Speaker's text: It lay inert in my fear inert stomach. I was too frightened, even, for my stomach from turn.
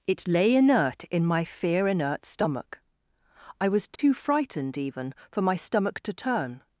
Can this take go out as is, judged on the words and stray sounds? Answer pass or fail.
fail